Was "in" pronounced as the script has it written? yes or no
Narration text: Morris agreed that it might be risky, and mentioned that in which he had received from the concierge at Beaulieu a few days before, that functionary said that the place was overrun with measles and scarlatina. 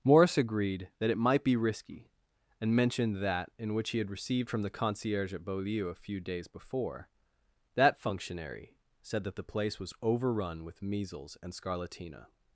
yes